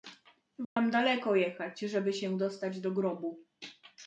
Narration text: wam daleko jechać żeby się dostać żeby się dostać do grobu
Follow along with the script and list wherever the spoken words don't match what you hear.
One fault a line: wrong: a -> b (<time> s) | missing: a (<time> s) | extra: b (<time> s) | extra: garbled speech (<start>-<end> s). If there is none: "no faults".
missing: żeby się dostać (2.8 s)